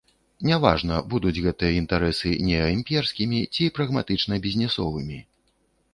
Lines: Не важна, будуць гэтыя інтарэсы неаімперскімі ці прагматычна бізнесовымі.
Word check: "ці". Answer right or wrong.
right